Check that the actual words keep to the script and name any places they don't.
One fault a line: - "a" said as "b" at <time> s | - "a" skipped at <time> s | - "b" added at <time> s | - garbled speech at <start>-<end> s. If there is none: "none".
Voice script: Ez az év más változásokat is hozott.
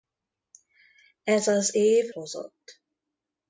- "más változásokat is" skipped at 2.1 s